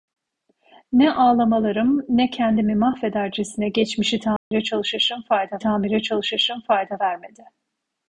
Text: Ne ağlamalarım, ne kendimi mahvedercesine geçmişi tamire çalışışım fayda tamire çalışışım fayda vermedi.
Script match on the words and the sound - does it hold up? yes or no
no